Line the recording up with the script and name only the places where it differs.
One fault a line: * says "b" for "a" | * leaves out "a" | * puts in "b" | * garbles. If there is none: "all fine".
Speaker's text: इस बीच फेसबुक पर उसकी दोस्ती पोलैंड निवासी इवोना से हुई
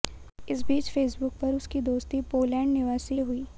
* leaves out "इवोना से"